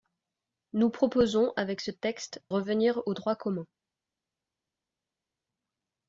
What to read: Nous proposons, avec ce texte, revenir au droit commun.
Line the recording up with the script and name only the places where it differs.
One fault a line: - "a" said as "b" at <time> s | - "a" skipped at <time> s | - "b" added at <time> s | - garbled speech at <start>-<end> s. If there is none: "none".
none